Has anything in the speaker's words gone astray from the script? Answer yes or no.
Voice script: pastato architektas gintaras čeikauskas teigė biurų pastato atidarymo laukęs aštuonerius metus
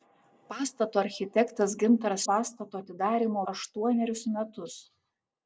yes